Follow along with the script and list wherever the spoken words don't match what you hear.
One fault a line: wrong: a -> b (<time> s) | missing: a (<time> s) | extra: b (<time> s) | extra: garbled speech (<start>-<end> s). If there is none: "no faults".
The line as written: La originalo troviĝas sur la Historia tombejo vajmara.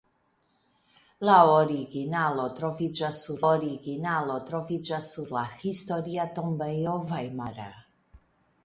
extra: originalo troviĝas sur (3.5 s)